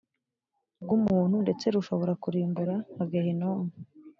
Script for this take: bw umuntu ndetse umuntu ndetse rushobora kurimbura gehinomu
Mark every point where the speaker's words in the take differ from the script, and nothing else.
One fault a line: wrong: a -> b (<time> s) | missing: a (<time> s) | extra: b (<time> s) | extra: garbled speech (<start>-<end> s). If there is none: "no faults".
missing: umuntu ndetse (1.6 s)
extra: nka (2.9 s)